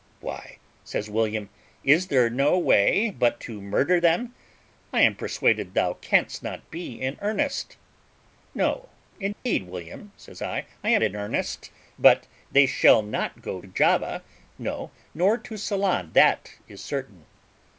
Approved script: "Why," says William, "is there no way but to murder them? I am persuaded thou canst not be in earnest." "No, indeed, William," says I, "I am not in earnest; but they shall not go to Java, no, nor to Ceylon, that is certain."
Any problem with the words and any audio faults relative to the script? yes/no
yes